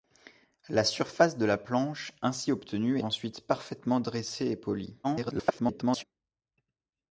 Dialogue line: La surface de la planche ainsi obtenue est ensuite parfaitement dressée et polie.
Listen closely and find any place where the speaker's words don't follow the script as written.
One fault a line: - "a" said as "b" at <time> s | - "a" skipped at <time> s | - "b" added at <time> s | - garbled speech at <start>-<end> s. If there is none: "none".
- "est" skipped at 3.0 s
- garbled speech at 5.0-6.0 s